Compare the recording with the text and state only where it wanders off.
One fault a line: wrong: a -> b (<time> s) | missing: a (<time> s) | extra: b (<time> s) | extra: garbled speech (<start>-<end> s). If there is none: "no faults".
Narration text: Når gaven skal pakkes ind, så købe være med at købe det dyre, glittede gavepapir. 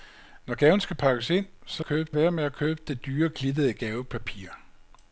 no faults